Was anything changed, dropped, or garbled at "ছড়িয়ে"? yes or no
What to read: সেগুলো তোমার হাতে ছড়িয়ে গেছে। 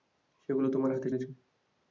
yes